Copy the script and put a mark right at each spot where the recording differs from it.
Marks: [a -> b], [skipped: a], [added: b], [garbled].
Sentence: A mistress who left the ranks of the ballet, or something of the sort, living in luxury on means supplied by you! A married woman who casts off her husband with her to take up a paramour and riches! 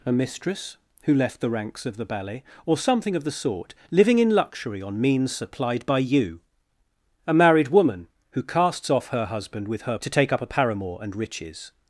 A mistress who left the ranks of the ballet, or something of the sort, living in luxury on means supplied by you! A married woman who casts off her husband with her to take up a paramour and riches!